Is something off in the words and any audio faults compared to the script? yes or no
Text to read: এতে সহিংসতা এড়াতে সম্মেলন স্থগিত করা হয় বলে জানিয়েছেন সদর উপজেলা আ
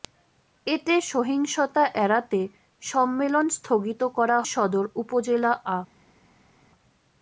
yes